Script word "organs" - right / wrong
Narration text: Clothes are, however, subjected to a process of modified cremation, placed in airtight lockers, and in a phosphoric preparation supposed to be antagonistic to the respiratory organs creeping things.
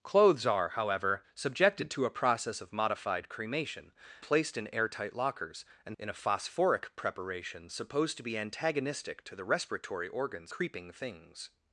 right